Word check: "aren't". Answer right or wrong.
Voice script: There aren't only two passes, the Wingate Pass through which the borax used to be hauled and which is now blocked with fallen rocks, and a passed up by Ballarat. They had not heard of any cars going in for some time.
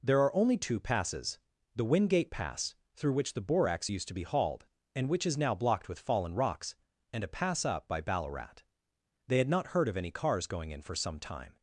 wrong